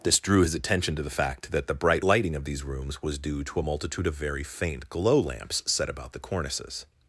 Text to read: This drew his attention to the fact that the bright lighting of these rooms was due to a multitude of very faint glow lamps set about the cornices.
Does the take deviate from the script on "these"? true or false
false